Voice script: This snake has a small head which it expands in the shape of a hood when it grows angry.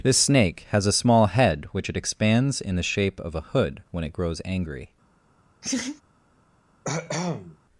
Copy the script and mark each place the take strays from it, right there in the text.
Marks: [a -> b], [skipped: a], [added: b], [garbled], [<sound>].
This snake has a small head which it expands in the shape of a hood when it grows angry. [laugh] [cough]